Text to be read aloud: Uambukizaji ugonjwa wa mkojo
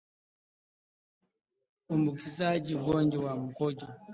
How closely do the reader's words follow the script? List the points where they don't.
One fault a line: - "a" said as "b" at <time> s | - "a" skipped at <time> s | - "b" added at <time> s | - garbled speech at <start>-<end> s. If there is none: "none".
none